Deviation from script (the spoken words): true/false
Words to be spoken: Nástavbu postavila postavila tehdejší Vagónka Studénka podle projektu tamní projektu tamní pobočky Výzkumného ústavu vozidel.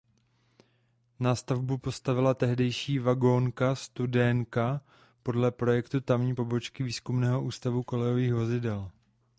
true